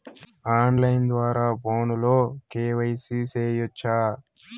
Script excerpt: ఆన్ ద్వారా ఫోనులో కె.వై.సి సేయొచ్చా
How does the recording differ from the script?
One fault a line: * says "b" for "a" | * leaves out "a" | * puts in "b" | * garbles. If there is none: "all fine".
* puts in "లైను"